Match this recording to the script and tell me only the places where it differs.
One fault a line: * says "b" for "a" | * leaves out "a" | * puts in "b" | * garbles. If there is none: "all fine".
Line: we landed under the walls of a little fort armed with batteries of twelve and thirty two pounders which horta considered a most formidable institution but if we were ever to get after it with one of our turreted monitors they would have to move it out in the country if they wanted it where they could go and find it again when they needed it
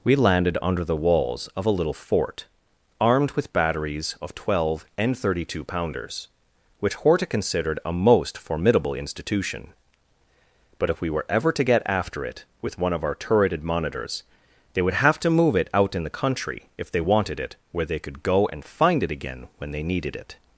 all fine